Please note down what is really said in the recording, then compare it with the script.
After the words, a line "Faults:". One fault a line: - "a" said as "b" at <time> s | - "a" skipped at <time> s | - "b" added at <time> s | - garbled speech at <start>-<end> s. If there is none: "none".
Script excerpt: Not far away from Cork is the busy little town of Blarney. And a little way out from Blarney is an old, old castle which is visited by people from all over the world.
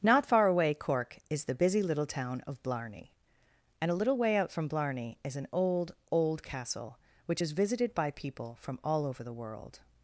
Not far away Cork is the busy little town of Blarney. And a little way out from Blarney is an old, old castle which is visited by people from all over the world.
Faults:
- "from" skipped at 0.7 s